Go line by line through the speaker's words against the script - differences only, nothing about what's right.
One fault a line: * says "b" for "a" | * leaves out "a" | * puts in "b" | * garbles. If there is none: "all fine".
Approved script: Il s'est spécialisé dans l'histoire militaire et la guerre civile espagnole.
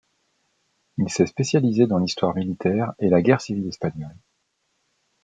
all fine